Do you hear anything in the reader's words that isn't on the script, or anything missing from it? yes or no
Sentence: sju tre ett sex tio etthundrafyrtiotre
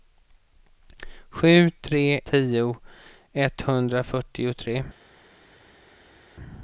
yes